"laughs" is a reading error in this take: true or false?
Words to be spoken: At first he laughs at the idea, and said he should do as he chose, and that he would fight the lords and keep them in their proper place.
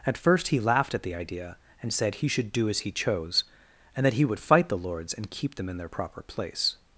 true